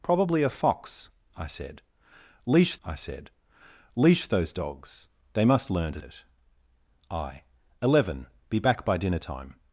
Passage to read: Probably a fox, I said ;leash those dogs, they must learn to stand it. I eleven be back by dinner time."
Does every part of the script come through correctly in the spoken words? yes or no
no